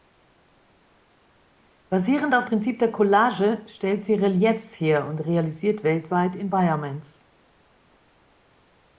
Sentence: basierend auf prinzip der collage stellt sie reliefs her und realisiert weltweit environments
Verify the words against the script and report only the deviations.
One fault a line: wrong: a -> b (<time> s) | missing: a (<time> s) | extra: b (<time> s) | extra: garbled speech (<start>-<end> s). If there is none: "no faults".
no faults